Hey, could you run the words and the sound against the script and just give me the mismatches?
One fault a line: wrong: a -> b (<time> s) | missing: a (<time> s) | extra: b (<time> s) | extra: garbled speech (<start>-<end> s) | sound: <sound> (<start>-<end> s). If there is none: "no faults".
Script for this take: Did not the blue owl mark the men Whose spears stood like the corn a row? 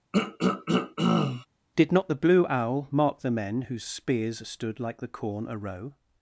sound: throat clearing (0.1-1.5 s)